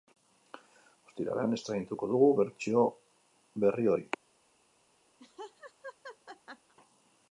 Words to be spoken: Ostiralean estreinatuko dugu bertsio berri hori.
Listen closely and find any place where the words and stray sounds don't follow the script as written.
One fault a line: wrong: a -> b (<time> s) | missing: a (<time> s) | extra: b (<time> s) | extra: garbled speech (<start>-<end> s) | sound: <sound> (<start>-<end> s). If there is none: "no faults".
sound: laugh (5.2-6.7 s)